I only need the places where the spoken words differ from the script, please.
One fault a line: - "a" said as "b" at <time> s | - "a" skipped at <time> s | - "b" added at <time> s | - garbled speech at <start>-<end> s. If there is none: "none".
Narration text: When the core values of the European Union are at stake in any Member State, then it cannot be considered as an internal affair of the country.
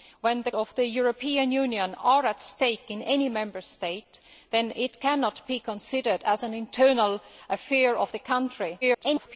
- "core values" skipped at 0.5 s
- garbled speech at 8.8-9.4 s